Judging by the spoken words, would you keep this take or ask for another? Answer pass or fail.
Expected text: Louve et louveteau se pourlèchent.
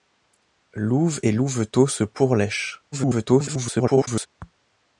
fail